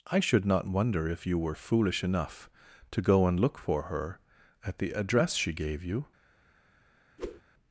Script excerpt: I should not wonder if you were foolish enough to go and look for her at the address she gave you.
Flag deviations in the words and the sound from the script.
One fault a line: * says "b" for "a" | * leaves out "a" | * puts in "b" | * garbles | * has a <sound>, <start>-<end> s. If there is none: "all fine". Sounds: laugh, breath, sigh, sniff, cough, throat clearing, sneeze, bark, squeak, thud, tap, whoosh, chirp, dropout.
* has a whoosh, 7.2-7.4 s